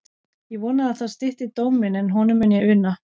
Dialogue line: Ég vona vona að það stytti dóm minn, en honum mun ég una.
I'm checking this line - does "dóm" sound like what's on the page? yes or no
yes